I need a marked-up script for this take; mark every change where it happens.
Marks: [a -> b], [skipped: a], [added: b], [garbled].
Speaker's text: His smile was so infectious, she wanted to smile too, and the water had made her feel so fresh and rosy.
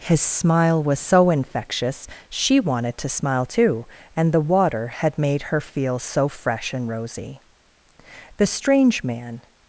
His smile was so infectious, she wanted to smile too, and the water had made her feel so fresh and rosy. [added: The strange man]